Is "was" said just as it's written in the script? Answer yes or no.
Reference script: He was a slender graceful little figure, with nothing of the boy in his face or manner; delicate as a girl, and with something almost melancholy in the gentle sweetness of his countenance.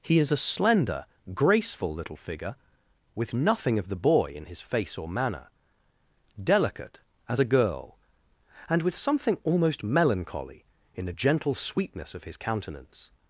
no